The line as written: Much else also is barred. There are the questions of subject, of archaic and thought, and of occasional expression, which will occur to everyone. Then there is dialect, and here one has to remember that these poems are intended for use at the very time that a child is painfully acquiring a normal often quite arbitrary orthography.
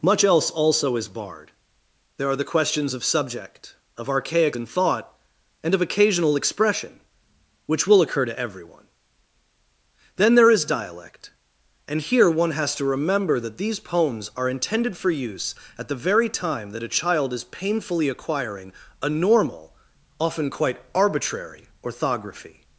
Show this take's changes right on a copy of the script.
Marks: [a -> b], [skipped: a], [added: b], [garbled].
Much else also is barred. There are the questions of subject, of archaic and thought, and of occasional expression, which will occur to everyone. Then there is dialect, and here one has to remember that these poems are intended for use at the very time that a child is painfully acquiring a normal often quite arbitrary orthography.